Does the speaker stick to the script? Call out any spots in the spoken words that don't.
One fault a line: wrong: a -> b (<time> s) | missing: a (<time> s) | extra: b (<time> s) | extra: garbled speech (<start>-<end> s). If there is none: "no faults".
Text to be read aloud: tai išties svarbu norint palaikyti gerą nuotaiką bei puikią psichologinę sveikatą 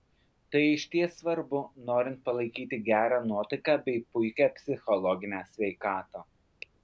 no faults